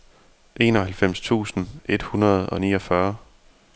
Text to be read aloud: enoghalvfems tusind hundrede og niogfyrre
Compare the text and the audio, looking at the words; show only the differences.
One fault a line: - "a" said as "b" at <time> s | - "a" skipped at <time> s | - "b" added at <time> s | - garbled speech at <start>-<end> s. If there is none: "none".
- "et" added at 1.9 s